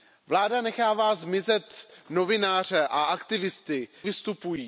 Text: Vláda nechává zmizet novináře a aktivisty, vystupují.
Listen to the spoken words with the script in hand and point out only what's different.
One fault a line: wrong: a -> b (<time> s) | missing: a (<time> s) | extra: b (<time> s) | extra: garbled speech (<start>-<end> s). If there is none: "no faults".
no faults